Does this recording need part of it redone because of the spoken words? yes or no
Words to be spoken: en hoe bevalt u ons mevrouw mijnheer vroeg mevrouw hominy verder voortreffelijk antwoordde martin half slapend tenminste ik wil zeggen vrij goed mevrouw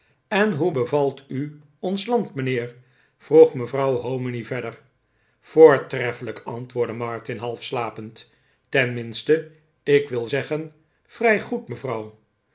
yes